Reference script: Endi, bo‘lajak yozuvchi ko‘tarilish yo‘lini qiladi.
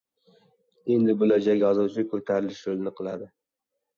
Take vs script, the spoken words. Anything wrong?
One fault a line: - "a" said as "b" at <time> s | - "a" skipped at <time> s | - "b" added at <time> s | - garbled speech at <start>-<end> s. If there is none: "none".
none